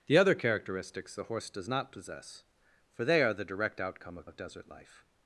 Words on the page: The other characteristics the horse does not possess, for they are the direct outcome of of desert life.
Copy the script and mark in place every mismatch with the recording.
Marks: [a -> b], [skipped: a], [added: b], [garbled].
The other characteristics the horse does not possess, for they are the direct outcome of of desert life.